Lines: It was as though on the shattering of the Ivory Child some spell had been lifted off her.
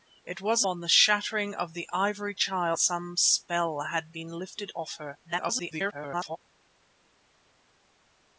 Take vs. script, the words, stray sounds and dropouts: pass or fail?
fail